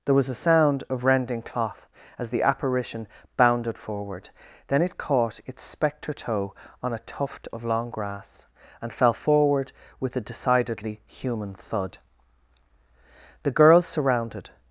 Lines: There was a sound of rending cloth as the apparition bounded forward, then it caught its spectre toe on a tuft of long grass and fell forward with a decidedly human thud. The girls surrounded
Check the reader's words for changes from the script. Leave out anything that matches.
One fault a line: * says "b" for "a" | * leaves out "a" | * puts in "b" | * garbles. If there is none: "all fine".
all fine